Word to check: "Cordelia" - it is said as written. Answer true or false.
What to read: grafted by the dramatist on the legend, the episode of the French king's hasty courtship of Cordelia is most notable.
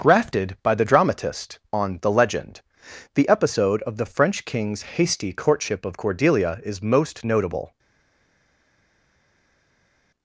true